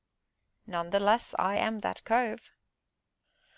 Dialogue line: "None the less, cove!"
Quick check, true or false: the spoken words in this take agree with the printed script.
false